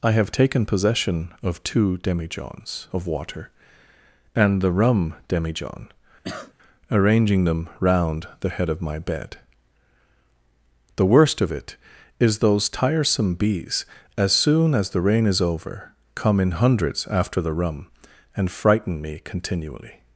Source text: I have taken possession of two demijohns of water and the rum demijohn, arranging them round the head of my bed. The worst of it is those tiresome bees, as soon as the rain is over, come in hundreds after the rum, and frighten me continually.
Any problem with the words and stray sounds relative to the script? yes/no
yes